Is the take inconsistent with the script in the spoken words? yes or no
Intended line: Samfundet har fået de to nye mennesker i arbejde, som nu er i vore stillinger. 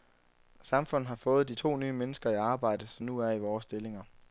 no